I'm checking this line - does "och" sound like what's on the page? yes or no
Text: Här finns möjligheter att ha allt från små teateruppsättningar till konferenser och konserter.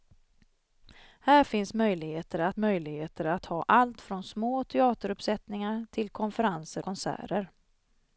no